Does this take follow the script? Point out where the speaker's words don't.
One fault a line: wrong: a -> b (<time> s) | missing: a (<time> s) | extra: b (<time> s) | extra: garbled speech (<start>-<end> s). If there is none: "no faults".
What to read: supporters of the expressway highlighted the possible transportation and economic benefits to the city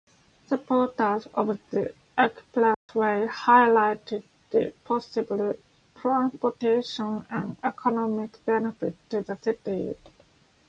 no faults